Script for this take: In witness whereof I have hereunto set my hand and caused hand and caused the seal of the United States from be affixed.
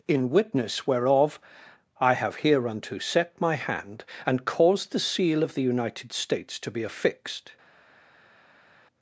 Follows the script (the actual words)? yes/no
no